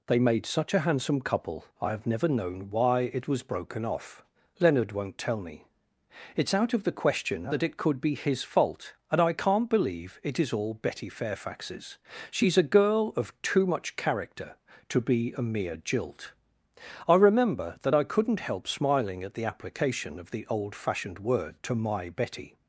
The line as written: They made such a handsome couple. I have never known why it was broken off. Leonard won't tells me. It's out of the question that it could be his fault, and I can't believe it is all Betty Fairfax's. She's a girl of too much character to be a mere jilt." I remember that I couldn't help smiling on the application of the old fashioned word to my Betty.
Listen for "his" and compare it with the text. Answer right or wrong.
right